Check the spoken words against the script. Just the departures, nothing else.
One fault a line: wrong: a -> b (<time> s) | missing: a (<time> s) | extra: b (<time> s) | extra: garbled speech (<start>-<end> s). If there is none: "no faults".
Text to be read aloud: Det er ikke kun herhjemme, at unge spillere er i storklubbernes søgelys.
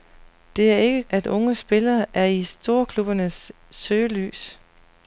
missing: kun herhjemme (1.0 s)